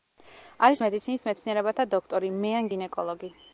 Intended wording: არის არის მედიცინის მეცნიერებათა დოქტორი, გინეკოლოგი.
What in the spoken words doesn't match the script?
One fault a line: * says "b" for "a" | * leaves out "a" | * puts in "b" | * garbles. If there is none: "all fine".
* leaves out "არის"
* puts in "მეან"